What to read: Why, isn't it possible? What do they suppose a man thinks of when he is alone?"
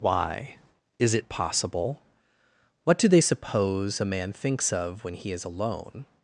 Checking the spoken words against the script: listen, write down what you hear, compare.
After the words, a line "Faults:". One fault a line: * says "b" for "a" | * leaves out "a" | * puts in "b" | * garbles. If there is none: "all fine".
Why, is it possible? What do they suppose a man thinks of when he is alone?"
Faults:
* says "is" for "isn't"